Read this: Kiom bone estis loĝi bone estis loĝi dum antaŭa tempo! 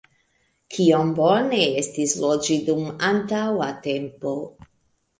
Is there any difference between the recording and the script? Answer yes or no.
yes